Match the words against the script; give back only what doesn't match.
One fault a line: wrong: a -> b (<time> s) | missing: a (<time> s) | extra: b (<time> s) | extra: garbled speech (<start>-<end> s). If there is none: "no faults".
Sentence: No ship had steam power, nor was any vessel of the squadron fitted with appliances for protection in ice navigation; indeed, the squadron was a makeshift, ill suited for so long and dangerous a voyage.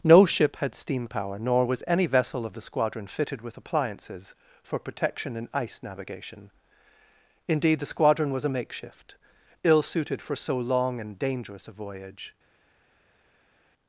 no faults